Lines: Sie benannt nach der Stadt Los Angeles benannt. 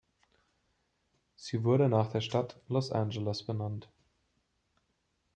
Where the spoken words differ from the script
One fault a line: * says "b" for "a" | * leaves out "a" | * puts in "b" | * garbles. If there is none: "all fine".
* says "wurde" for "benannt"